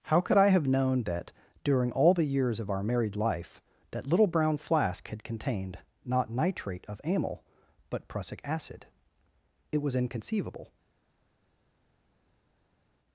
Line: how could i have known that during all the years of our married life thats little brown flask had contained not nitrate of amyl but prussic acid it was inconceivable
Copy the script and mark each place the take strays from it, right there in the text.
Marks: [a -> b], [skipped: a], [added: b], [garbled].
how could i have known that during all the years of our married life [thats -> that] little brown flask had contained not nitrate of amyl but prussic acid it was inconceivable